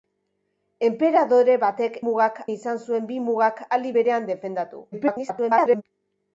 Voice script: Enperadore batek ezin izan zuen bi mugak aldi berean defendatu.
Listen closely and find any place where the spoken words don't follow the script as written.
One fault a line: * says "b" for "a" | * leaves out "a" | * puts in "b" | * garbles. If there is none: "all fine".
* says "mugak" for "ezin"
* garbles